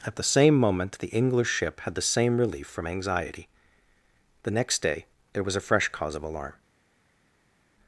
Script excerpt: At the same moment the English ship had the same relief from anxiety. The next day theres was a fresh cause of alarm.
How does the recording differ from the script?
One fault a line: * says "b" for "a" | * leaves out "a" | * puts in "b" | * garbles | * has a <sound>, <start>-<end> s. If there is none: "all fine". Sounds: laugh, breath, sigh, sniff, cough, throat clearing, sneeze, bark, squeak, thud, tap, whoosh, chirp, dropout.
* says "there" for "theres"